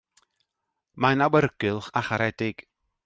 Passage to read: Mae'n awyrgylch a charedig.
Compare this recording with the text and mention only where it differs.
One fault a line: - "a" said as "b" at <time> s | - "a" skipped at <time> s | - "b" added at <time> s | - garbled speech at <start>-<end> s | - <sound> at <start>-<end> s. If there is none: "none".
none